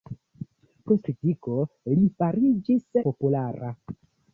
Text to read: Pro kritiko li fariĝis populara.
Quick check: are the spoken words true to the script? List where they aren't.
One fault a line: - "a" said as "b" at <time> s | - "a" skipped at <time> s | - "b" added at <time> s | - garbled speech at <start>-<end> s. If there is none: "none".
none